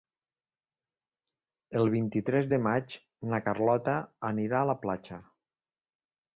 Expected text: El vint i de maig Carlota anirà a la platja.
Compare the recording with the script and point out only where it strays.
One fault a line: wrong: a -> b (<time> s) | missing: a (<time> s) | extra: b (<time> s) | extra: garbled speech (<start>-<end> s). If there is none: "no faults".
extra: tres (2.3 s)
extra: na (3.3 s)